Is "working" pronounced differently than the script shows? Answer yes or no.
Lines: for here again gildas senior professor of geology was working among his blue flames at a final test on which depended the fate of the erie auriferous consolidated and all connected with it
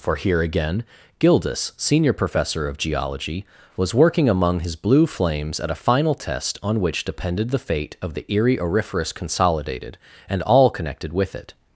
no